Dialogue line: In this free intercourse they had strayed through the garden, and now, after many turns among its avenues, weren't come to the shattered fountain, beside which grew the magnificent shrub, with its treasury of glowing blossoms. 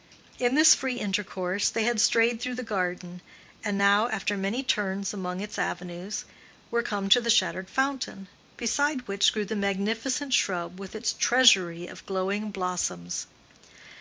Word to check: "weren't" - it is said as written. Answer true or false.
false